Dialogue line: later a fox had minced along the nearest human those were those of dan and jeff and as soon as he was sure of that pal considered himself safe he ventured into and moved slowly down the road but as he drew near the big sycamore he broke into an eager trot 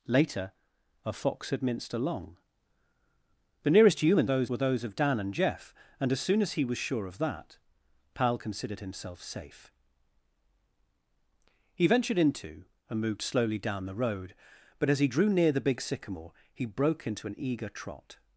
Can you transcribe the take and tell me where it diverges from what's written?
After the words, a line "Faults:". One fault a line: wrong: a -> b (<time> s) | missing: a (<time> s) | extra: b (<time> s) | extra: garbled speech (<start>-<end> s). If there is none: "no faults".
later a fox had minced along the nearest human those were those of dan and jeff and as soon as he was sure of that pal considered himself safe he ventured into and moved slowly down the road but as he drew near the big sycamore he broke into an eager trot
Faults:
no faults